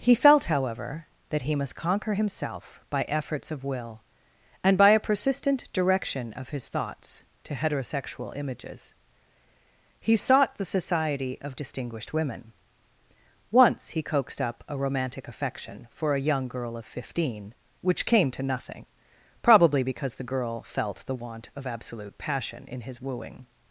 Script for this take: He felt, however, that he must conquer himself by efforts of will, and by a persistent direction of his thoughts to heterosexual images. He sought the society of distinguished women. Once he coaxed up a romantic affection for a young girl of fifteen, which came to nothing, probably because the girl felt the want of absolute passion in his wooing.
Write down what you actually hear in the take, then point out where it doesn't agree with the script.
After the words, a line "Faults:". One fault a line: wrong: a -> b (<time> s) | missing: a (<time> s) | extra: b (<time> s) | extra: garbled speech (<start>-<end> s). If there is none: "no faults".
He felt, however, that he must conquer himself by efforts of will, and by a persistent direction of his thoughts to heterosexual images. He sought the society of distinguished women. Once he coaxed up a romantic affection for a young girl of fifteen, which came to nothing, probably because the girl felt the want of absolute passion in his wooing.
Faults:
no faults